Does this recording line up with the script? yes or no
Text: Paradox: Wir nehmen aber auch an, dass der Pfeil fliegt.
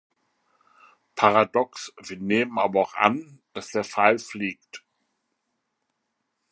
yes